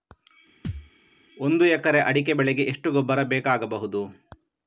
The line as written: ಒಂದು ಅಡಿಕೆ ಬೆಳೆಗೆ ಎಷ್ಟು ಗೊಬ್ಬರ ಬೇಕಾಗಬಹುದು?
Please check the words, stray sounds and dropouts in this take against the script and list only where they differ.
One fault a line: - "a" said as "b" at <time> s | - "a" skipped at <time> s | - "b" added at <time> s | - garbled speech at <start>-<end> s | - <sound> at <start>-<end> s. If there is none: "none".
- thud at 0.6-0.9 s
- "ಎಕರೆ" added at 1.7 s